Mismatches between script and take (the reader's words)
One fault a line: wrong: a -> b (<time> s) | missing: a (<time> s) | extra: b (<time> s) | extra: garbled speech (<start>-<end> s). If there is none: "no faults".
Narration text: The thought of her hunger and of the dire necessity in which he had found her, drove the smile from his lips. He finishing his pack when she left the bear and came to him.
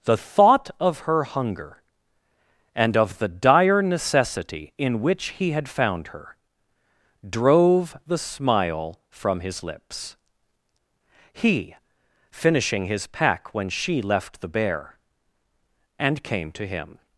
no faults